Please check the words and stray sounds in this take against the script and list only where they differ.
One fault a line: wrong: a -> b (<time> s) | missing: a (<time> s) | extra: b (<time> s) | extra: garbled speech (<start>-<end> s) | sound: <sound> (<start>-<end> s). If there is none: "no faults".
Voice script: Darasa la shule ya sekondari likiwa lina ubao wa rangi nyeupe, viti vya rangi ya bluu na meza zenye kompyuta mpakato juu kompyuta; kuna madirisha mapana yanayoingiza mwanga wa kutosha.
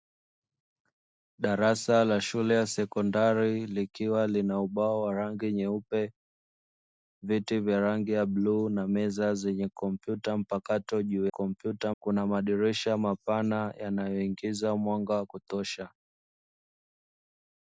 no faults